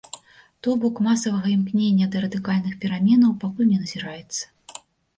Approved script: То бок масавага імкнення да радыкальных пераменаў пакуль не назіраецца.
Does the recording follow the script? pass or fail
pass